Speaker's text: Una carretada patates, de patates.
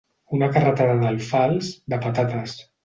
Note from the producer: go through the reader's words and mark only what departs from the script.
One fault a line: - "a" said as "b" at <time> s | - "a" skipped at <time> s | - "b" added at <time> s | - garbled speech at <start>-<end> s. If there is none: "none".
- "patates" said as "d'alfals" at 1.0 s